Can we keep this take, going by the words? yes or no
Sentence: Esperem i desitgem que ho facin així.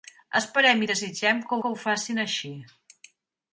no